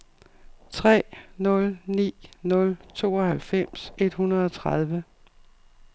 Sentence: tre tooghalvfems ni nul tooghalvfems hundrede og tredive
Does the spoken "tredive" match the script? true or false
true